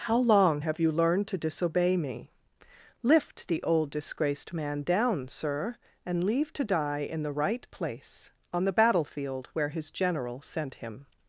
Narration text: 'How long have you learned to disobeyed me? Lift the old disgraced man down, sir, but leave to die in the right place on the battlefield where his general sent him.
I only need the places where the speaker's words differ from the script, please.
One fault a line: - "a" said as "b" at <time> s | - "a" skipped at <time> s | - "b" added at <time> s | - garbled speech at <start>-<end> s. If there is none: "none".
- "disobeyed" said as "disobey" at 1.4 s
- "but" said as "and" at 6.1 s